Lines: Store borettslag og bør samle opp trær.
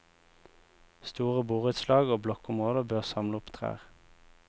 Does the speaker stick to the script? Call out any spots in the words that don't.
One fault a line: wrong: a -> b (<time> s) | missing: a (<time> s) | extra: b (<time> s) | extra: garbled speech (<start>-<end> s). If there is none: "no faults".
extra: blokkområder (2.2 s)